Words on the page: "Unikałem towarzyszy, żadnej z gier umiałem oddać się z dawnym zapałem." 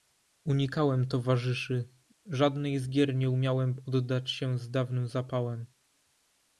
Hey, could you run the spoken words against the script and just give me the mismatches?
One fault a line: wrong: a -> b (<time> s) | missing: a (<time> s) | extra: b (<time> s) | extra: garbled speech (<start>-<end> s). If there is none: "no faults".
extra: nie (3.1 s)